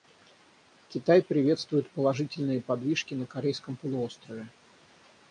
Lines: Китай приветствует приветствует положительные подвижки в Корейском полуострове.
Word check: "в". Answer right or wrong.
wrong